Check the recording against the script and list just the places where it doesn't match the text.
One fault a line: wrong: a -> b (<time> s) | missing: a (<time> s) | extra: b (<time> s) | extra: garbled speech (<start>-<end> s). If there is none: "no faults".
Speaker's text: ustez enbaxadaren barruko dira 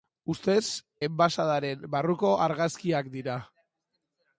extra: argazkiak (2.5 s)